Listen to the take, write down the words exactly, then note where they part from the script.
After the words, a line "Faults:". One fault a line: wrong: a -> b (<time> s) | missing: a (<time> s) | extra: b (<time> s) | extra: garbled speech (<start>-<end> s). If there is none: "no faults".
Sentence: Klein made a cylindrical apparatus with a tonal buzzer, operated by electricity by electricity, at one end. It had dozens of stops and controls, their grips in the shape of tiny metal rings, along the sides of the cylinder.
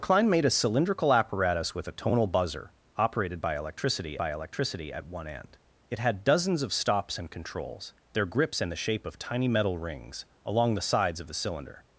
Klein made a cylindrical apparatus with a tonal buzzer, operated by electricity by electricity, at one end. It had dozens of stops and controls, their grips in the shape of tiny metal rings, along the sides of the cylinder.
Faults:
no faults